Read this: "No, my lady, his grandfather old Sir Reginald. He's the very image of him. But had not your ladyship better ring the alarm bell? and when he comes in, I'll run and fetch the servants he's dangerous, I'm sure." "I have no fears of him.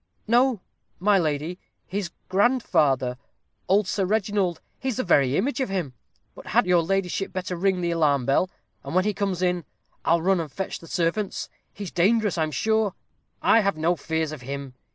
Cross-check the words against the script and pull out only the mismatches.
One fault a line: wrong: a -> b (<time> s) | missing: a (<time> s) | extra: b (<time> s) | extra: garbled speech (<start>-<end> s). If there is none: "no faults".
missing: not (6.7 s)